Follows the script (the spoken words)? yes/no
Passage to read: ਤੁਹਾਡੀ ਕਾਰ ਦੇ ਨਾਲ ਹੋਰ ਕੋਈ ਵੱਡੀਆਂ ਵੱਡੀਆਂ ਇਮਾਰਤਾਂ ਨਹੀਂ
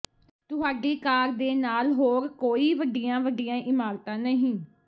yes